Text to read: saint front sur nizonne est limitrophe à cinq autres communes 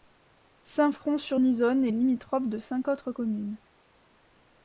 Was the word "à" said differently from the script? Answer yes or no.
yes